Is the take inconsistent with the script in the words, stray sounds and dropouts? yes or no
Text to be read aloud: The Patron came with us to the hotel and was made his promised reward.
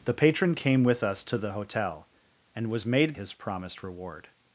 no